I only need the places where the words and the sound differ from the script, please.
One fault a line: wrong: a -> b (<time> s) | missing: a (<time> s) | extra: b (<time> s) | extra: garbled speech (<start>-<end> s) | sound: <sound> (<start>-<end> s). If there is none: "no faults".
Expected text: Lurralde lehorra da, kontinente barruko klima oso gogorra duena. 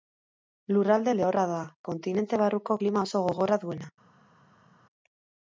no faults